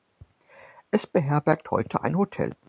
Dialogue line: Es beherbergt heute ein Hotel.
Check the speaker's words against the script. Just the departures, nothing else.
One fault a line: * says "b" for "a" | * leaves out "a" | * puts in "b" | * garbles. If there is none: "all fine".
all fine